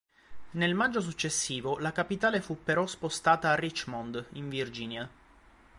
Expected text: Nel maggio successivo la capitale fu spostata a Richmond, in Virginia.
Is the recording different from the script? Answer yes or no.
yes